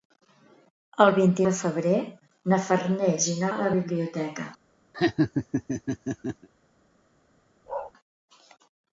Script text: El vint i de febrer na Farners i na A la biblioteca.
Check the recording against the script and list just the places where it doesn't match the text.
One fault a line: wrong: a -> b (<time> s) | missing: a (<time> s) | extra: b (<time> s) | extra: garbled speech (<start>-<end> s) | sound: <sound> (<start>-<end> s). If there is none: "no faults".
sound: laugh (4.9-6.5 s)
sound: bark (7.7-7.9 s)